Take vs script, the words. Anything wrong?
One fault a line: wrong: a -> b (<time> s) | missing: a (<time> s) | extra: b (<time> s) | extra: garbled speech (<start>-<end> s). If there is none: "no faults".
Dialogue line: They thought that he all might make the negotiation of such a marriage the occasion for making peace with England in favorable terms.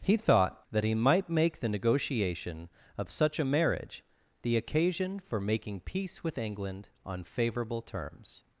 wrong: They -> He (0.0 s)
missing: all (0.9 s)
wrong: in -> on (7.0 s)